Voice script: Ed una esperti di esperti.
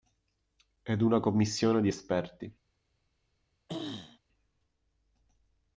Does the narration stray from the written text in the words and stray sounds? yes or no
yes